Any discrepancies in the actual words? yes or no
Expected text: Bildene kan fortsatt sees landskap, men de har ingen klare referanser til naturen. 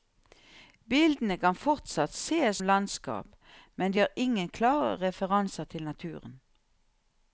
no